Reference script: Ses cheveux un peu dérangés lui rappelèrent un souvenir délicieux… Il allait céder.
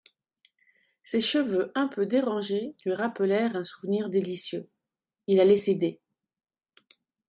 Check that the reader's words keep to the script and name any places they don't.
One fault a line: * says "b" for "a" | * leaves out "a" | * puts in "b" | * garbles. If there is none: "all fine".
all fine